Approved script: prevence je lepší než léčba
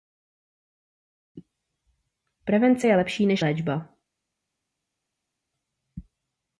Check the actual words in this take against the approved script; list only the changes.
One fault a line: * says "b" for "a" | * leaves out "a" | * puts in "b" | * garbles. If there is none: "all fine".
all fine